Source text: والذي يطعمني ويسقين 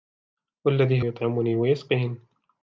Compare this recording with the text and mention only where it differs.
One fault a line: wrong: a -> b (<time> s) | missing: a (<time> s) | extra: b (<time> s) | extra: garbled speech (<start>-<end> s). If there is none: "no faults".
no faults